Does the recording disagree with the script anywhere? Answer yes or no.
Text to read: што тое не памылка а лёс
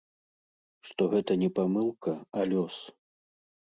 yes